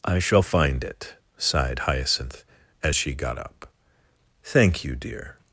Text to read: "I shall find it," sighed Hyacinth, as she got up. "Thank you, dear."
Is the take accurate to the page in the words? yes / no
yes